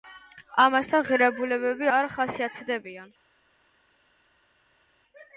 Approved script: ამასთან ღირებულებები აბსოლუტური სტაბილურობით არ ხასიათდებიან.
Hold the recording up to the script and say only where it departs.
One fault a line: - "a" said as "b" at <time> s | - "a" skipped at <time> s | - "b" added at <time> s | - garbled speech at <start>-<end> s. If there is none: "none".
- "აბსოლუტური სტაბილურობით" skipped at 1.9 s